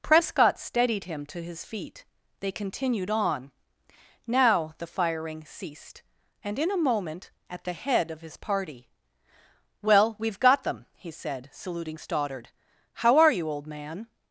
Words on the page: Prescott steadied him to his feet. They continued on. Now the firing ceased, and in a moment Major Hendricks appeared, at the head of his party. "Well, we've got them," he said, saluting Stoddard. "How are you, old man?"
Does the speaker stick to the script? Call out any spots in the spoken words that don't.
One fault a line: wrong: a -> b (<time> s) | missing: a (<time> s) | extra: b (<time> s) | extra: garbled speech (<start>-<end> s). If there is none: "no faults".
missing: Major Hendricks appeared (7.3 s)